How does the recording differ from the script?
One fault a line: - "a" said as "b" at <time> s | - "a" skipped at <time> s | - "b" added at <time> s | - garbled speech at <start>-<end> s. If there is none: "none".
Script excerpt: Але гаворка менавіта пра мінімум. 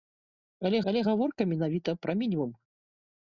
- "але" added at 0.9 s